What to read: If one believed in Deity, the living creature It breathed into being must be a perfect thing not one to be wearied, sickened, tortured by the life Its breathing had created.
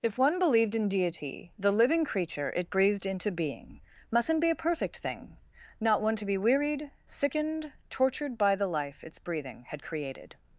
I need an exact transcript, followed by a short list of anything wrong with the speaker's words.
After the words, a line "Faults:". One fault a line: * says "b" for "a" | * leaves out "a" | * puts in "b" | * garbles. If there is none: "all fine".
If one believed in Deity, the living creature It breathed into being mustn't be a perfect thing not one to be wearied, sickened, tortured by the life Its breathing had created.
Faults:
* says "mustn't" for "must"